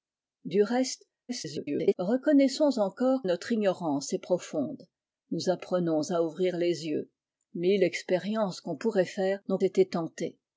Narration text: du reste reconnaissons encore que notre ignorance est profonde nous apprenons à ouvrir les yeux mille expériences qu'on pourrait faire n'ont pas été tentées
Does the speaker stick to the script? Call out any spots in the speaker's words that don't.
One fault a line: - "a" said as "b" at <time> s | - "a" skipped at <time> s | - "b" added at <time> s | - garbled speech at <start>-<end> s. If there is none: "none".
- garbled speech at 1.3-1.9 s
- "que" skipped at 3.2 s
- "pas" skipped at 9.6 s